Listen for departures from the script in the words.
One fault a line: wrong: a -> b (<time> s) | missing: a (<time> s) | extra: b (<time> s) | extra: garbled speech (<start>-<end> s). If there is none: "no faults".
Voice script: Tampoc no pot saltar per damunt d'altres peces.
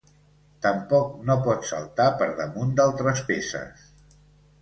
no faults